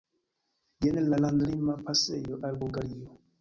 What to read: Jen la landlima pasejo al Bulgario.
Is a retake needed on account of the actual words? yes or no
no